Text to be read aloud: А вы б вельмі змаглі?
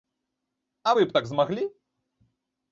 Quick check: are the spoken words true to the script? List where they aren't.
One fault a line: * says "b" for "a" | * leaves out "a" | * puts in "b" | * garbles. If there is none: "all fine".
* says "так" for "вельмі"